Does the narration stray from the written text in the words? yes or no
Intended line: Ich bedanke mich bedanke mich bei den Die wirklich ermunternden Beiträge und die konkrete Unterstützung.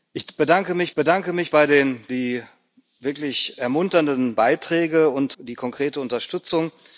no